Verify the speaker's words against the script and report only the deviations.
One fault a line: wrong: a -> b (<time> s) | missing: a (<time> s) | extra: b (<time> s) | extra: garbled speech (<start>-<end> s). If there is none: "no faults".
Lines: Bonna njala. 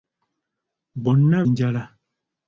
no faults